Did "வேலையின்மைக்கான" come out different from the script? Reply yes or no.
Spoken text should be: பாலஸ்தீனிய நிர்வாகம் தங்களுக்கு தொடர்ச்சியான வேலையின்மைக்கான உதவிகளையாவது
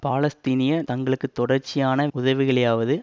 yes